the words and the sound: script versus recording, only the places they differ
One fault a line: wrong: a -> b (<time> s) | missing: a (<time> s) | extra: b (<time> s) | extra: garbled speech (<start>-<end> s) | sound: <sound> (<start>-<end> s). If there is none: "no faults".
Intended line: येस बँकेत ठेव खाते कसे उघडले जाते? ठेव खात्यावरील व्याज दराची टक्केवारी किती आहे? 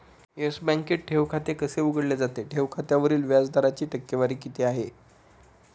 no faults